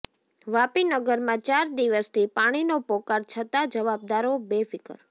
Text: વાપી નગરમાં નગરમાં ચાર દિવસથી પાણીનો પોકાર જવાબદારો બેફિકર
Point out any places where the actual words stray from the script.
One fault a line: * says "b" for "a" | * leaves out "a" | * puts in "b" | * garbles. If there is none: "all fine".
* leaves out "નગરમાં"
* puts in "છતાં"